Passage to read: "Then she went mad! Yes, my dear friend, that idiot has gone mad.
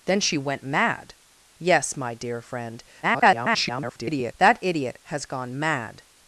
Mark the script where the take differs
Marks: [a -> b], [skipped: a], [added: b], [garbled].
"Then she went mad! Yes, my dear friend, [garbled] that idiot has gone mad.